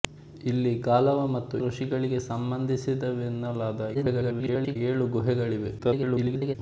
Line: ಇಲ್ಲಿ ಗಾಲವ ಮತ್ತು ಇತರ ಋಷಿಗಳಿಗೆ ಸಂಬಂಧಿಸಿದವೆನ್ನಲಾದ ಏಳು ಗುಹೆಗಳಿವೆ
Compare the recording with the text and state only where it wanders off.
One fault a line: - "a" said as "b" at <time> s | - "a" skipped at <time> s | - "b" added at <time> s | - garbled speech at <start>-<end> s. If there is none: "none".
- "ಇತರ" skipped at 1.6 s
- garbled speech at 3.9-4.8 s
- garbled speech at 5.8-6.6 s